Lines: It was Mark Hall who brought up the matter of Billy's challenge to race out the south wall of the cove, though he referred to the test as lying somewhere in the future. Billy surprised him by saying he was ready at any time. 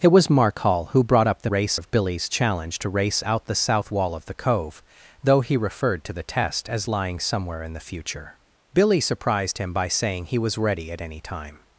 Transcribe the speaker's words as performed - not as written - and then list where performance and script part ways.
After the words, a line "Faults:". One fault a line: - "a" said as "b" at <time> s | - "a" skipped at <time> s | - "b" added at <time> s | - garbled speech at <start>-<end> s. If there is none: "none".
It was Mark Hall who brought up the race of Billy's challenge to race out the south wall of the cove, though he referred to the test as lying somewhere in the future. Billy surprised him by saying he was ready at any time.
Faults:
- "matter" said as "race" at 1.5 s